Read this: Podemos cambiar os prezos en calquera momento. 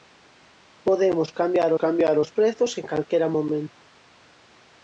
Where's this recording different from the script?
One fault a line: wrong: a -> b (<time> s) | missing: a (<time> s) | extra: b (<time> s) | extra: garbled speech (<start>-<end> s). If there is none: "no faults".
extra: cambiar (1.8 s)